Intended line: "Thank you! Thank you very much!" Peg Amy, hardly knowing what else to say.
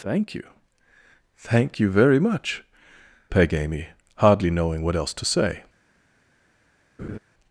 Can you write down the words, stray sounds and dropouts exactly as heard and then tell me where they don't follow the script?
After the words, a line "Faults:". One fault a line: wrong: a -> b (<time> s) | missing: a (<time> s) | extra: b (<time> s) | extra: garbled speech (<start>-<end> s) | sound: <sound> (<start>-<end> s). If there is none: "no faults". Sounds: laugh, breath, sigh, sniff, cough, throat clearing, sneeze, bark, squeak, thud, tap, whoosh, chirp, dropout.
"Thank you! Thank you very much!" Peg Amy, hardly knowing what else to say.
Faults:
sound: laugh (7.0-7.2 s)